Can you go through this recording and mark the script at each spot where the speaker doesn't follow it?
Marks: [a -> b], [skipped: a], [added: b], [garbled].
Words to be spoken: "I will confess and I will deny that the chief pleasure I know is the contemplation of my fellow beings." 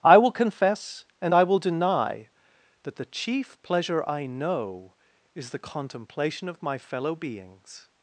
"I will confess and I will deny that the chief pleasure I know is the contemplation of my fellow beings."